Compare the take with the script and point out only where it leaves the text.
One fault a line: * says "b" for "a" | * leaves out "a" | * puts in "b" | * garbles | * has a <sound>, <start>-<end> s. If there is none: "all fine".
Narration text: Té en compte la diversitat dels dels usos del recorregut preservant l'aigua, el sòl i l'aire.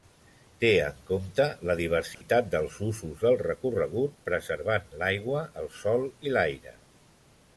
* has a dropout, 2.1-2.2 s
* leaves out "dels"